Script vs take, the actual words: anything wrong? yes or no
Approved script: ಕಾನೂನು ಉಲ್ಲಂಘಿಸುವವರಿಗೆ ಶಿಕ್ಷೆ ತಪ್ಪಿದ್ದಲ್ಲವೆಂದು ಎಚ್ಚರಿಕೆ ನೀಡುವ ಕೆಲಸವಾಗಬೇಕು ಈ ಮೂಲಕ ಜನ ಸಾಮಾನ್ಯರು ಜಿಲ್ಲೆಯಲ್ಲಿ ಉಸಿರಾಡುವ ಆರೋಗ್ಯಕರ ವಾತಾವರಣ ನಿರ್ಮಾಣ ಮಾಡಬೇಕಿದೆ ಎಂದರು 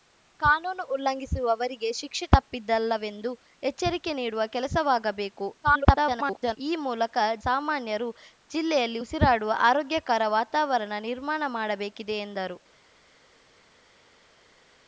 yes